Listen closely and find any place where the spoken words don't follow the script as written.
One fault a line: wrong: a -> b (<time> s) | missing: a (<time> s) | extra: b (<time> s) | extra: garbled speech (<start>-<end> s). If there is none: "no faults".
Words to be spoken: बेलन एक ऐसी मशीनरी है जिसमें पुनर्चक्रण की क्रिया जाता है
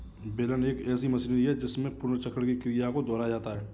extra: को दोहराया (2.9 s)